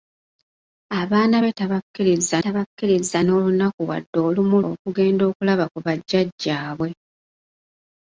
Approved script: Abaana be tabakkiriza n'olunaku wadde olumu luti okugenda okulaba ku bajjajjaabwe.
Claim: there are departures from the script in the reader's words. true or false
true